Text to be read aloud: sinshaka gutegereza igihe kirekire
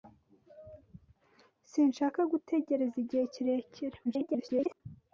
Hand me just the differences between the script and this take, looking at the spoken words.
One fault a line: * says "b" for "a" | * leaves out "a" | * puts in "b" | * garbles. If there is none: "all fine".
* garbles